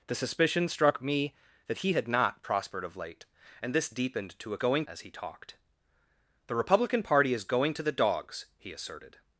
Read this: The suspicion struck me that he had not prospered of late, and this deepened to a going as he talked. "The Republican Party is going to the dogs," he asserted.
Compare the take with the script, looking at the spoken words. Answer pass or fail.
pass